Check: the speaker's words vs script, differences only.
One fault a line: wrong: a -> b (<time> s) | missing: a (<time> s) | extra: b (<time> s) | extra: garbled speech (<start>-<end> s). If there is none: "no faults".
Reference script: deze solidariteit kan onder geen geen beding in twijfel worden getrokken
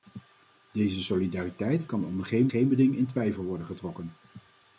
no faults